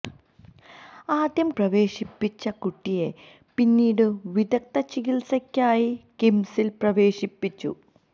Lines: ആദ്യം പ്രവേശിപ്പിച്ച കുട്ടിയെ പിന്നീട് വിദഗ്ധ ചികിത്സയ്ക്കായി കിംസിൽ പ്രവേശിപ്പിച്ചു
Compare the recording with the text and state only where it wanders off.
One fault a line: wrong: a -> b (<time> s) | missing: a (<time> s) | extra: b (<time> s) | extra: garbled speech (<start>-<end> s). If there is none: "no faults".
no faults